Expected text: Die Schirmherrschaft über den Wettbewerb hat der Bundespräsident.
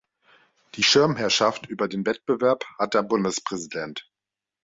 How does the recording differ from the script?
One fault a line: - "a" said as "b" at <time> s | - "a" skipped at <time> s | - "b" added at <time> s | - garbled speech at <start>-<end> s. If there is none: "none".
none